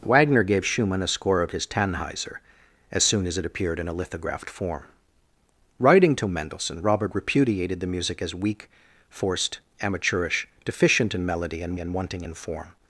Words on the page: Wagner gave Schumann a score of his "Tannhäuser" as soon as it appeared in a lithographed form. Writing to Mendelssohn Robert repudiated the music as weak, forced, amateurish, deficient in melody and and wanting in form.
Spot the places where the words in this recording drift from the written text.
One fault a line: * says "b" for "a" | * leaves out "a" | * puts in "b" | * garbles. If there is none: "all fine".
all fine